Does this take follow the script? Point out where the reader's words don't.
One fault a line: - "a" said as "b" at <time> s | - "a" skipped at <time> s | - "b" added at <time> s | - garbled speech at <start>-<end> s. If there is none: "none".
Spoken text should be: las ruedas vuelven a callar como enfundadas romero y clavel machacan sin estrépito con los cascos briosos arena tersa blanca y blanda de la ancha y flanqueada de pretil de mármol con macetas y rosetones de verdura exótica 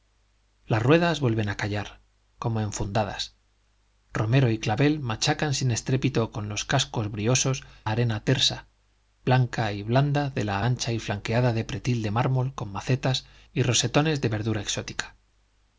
none